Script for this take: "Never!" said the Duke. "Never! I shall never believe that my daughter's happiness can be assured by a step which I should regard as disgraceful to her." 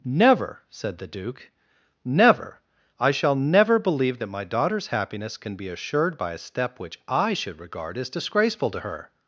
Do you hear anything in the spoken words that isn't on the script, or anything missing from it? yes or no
no